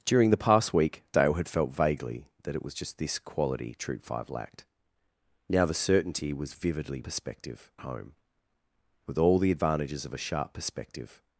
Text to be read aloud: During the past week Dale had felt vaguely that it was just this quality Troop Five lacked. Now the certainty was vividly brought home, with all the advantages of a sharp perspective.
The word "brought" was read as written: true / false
false